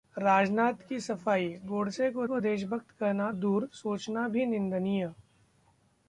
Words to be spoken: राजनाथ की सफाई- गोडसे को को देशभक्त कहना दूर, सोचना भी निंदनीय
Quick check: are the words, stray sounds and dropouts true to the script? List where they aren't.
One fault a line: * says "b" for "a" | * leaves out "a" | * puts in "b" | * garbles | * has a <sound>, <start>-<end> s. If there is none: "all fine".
all fine